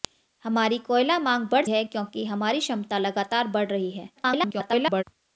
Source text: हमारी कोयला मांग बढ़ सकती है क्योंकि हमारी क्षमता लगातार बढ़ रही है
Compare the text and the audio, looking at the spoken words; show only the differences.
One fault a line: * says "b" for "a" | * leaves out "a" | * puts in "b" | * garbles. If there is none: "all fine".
* leaves out "सकती"
* garbles